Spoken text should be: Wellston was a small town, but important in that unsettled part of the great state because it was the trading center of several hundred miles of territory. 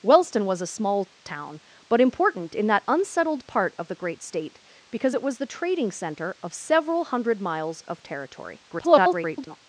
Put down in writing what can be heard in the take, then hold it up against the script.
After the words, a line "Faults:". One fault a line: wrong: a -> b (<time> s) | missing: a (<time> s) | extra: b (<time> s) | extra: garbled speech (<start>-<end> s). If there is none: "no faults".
Wellston was a small town, but important in that unsettled part of the great state because it was the trading center of several hundred miles of territory. [garbled]
Faults:
extra: garbled speech (8.7-9.6 s)